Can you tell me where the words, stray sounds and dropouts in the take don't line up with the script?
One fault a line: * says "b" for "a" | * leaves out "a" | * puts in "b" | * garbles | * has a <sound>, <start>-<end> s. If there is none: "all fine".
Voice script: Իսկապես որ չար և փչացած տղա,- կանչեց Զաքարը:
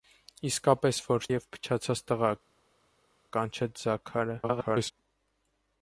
* leaves out "չար"
* garbles